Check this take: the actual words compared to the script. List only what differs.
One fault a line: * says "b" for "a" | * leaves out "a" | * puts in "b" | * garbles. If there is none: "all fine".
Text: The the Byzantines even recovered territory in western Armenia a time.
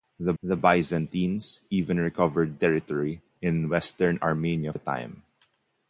all fine